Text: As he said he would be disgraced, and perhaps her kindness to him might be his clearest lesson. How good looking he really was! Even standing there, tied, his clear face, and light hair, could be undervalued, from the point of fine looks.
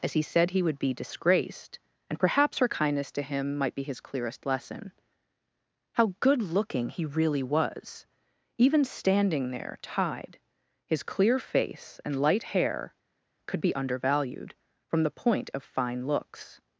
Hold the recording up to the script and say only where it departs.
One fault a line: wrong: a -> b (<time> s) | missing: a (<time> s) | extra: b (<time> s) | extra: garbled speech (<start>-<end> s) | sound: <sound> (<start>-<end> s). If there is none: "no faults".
no faults